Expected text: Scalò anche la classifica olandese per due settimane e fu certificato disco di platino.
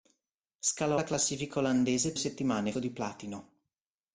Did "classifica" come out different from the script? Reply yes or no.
no